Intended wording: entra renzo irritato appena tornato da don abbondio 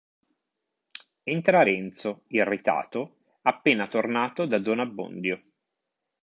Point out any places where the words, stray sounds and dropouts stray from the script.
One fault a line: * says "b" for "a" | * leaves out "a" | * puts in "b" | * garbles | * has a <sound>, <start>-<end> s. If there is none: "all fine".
all fine